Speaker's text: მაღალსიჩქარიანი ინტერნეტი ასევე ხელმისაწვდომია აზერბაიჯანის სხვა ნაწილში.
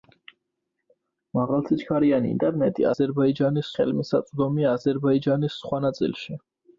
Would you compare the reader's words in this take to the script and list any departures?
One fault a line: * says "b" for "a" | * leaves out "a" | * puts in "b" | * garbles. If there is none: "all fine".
* says "აზერბაიჯანის" for "ასევე"